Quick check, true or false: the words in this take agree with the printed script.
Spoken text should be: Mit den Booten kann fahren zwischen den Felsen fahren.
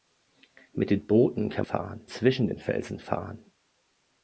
true